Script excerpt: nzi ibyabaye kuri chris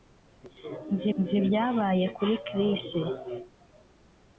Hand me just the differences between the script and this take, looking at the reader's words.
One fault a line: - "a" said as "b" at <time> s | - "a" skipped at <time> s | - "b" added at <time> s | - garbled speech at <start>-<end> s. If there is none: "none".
- "nzi" added at 1.2 s